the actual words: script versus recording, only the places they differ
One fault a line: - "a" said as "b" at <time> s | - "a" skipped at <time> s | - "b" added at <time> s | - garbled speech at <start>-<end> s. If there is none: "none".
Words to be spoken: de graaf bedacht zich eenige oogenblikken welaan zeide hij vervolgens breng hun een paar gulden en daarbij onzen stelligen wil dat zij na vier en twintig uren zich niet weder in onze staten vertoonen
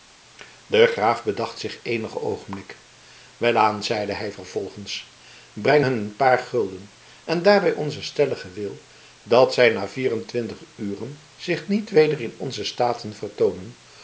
none